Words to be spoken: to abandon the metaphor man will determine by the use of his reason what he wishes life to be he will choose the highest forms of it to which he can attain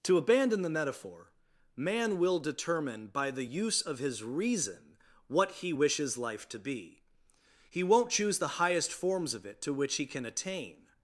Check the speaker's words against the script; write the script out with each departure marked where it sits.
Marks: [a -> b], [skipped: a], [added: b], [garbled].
to abandon the metaphor man will determine by the use of his reason what he wishes life to be he [will -> won't] choose the highest forms of it to which he can attain